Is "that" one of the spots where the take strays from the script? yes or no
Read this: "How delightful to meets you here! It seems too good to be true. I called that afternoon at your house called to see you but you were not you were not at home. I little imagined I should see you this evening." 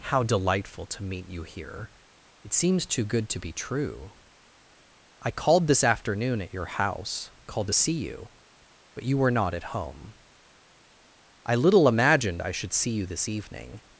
yes